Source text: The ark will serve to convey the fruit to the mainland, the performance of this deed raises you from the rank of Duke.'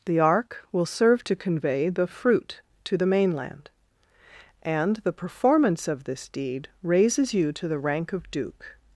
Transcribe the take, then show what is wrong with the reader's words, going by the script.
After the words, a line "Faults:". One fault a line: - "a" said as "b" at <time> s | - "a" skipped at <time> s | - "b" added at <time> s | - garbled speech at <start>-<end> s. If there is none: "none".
The ark will serve to convey the fruit to the mainland, and the performance of this deed raises you to the rank of Duke.'
Faults:
- "and" added at 4.6 s
- "from" said as "to" at 7.5 s